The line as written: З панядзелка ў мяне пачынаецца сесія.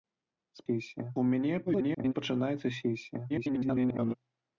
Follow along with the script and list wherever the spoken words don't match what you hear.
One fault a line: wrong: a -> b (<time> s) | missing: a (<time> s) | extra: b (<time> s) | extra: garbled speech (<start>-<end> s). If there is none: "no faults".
wrong: панядзелка -> сесія (0.7 s)
extra: garbled speech (1.7-2.1 s)
extra: garbled speech (3.3-4.1 s)